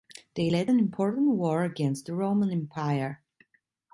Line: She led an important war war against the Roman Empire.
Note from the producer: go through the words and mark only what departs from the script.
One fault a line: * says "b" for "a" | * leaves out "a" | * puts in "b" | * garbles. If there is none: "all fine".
* says "They" for "She"
* leaves out "war"